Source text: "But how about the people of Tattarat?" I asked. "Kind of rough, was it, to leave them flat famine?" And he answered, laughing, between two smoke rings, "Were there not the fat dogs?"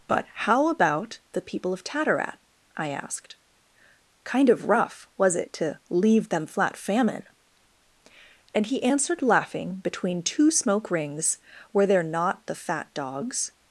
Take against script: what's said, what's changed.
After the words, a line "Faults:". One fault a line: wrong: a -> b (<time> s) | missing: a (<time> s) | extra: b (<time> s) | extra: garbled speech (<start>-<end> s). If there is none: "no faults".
"But how about the people of Tattarat?" I asked. "Kind of rough, was it, to leave them flat famine?" And he answered, laughing, between two smoke rings, "Were there not the fat dogs?"
Faults:
no faults